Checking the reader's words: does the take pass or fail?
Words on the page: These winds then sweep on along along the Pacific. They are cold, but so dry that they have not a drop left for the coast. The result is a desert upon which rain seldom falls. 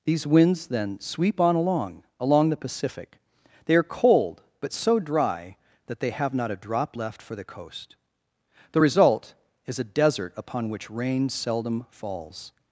pass